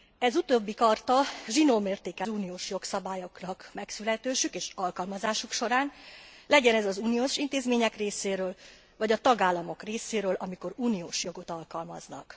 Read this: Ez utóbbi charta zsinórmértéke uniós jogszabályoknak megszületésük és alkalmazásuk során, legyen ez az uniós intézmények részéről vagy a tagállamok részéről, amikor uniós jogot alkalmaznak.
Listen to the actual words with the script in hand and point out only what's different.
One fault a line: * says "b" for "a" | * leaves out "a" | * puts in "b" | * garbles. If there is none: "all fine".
all fine